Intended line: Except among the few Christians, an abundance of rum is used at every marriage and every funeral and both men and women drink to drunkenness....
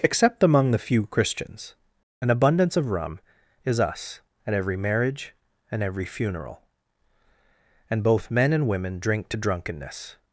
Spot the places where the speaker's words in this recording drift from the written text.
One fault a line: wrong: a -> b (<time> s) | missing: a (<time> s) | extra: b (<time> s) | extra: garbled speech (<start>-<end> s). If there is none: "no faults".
wrong: used -> us (3.8 s)